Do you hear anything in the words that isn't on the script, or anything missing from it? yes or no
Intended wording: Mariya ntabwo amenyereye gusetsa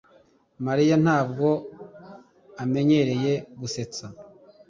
no